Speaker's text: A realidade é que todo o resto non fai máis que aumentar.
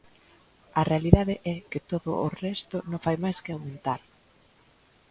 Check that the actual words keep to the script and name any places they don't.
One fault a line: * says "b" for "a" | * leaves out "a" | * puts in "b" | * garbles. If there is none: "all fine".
all fine